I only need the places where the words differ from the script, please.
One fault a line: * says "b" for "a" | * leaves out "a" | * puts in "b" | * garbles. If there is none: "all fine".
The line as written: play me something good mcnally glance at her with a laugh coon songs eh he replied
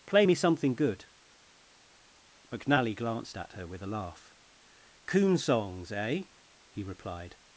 * says "glanced" for "glance"